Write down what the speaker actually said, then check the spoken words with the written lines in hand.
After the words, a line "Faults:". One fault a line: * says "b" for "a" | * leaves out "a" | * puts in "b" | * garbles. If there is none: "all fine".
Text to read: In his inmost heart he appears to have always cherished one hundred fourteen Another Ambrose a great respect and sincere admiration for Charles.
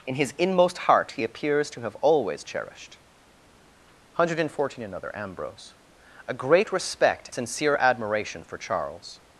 In his inmost heart he appears to have always cherished one hundred fourteen Another Ambrose a great respect sincere admiration for Charles.
Faults:
* leaves out "and"